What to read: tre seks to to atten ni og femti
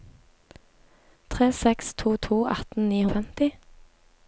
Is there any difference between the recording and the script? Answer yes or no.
no